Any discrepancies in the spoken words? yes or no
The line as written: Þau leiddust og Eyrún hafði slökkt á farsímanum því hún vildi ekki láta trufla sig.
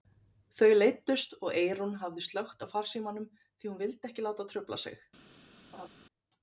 no